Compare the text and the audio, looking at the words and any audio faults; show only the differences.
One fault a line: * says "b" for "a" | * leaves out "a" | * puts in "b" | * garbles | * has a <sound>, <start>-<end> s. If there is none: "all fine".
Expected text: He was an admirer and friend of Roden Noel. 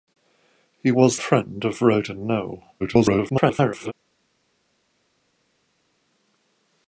* leaves out "an admirer and"
* garbles